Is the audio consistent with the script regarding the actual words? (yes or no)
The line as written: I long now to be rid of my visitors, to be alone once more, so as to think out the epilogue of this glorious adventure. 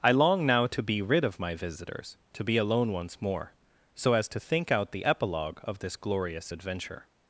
yes